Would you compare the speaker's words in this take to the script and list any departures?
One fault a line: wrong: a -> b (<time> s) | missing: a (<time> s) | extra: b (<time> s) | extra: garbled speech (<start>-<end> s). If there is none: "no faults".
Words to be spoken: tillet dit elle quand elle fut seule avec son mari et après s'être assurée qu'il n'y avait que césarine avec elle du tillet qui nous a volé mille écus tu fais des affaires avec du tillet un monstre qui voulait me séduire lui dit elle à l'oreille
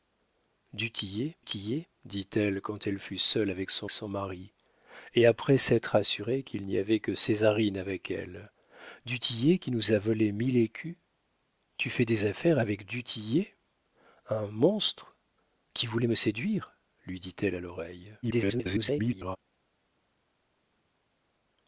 extra: tillet (1.5 s)
extra: son (3.9 s)
extra: garbled speech (18.2-19.4 s)